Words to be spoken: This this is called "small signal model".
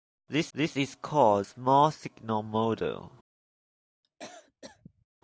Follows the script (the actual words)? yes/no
yes